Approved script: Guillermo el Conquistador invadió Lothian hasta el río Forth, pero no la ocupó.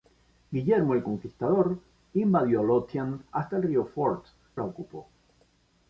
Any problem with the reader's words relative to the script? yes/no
yes